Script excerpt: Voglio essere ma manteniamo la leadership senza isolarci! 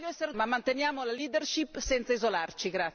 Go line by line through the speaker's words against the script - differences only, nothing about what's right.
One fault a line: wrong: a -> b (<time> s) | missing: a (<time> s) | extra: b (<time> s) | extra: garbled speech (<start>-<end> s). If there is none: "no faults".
no faults